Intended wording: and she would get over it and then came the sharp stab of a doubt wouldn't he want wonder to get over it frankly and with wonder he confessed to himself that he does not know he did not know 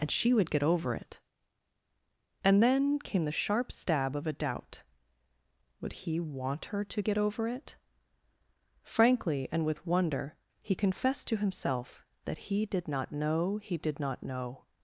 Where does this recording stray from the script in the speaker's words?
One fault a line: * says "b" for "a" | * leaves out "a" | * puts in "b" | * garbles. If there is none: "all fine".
* says "would" for "wouldn't"
* says "her" for "wonder"
* says "did" for "does"